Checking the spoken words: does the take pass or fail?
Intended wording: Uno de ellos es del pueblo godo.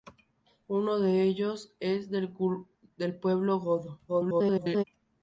fail